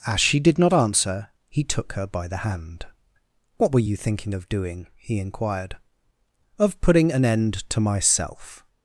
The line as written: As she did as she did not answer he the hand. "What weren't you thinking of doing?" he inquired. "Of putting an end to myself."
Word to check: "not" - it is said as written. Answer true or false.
false